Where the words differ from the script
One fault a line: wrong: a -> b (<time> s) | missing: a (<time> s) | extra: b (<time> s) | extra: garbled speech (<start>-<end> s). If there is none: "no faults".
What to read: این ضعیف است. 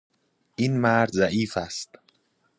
extra: مرد (0.8 s)